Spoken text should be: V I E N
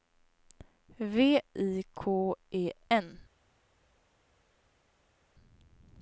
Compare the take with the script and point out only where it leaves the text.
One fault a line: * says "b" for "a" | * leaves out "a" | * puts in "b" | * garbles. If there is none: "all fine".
* puts in "K"